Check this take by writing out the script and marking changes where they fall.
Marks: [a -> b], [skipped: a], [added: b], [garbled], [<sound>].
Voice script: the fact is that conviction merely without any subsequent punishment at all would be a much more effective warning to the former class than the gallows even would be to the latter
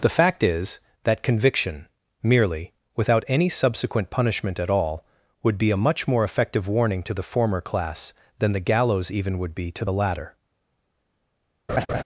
the fact is that conviction merely without any subsequent punishment at all would be a much more effective warning to the former class than the gallows even would be to the latter [laugh]